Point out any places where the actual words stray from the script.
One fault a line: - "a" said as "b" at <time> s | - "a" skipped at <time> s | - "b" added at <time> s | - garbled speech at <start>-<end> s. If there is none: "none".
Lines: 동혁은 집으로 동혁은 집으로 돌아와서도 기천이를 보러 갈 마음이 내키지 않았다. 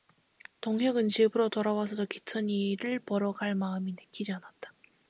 - "동혁은 집으로" skipped at 1.5 s